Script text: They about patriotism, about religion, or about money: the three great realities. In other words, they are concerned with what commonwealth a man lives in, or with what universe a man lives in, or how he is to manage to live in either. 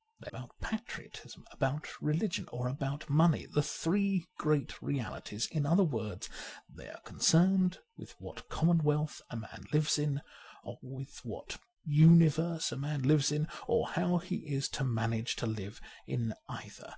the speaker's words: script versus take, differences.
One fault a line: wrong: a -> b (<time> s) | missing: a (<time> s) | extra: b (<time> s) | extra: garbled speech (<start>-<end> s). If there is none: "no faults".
no faults